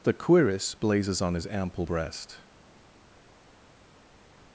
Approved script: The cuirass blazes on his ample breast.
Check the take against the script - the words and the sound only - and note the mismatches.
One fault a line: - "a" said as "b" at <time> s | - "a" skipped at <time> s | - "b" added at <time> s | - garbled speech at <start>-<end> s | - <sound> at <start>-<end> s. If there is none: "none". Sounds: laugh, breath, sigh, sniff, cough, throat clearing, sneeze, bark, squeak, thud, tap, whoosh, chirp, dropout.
none